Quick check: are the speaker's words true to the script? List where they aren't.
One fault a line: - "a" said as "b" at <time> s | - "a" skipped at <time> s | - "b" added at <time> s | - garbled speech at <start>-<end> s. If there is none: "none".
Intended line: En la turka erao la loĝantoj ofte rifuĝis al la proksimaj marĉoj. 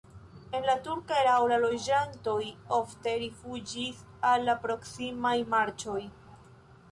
none